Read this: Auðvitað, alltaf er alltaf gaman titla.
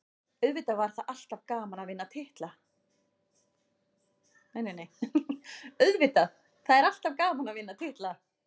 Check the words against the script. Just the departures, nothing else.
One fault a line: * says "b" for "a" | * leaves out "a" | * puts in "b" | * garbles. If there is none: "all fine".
* says "það" for "alltaf"
* puts in "að vinna"